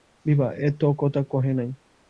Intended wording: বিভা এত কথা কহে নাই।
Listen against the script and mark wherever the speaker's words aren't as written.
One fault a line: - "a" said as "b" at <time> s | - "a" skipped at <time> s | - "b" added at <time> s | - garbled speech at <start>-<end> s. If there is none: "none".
none